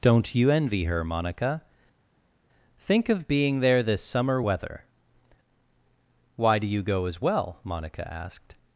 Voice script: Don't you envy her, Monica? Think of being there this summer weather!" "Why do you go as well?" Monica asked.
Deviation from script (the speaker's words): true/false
false